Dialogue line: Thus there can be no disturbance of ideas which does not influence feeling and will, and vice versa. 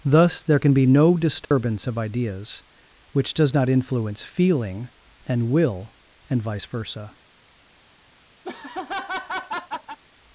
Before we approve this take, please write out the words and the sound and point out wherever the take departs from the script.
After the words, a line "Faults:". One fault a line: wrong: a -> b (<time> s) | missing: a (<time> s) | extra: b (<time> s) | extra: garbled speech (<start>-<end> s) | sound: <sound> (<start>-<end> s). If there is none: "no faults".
Thus there can be no disturbance of ideas which does not influence feeling and will, and vice versa.
Faults:
sound: dropout (1.4-1.5 s)
sound: laugh (8.4-10.0 s)